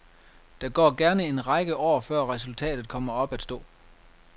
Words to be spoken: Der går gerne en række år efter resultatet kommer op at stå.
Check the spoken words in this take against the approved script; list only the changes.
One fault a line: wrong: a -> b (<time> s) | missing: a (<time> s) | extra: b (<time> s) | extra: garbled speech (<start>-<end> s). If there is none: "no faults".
wrong: efter -> før (2.0 s)